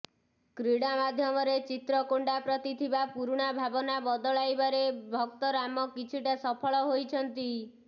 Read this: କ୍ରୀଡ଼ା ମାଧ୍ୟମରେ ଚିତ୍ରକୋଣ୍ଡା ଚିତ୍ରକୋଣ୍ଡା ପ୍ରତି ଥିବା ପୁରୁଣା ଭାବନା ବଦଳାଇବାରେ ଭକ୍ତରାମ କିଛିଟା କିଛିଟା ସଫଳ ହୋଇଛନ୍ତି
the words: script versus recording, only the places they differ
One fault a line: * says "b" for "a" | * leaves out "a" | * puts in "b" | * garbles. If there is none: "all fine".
* leaves out "ଚିତ୍ରକୋଣ୍ଡା"
* leaves out "କିଛିଟା"